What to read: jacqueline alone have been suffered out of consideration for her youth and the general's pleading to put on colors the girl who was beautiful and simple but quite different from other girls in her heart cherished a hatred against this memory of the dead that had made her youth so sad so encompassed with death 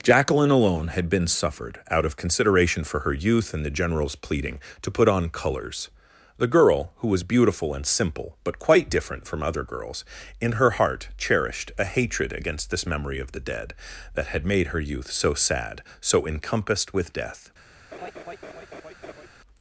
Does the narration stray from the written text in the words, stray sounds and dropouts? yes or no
yes